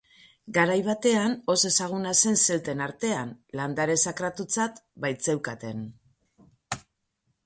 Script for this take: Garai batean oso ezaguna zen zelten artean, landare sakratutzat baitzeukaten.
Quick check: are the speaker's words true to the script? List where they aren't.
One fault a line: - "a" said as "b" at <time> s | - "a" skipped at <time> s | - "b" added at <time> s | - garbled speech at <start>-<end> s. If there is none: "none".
none